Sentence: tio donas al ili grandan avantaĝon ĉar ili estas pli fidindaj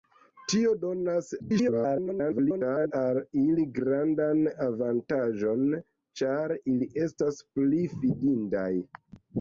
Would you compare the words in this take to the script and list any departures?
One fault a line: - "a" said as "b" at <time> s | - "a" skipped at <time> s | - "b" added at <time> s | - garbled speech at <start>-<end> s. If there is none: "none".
- garbled speech at 1.4-2.9 s